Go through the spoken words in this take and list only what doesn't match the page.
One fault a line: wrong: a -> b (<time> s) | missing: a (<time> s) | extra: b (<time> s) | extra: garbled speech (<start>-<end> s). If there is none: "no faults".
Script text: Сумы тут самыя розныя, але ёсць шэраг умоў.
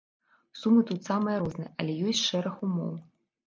no faults